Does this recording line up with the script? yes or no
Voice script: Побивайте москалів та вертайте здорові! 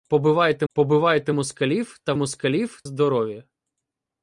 no